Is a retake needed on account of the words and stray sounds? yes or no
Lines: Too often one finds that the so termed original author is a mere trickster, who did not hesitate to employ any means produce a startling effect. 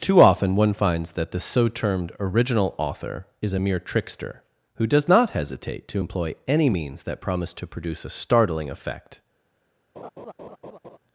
yes